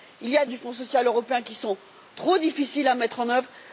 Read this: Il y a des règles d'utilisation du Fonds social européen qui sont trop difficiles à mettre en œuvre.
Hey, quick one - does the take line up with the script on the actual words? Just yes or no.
no